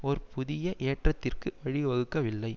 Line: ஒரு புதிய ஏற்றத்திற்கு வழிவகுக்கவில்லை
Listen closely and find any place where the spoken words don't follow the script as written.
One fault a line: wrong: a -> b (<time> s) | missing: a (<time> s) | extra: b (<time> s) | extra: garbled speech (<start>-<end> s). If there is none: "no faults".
no faults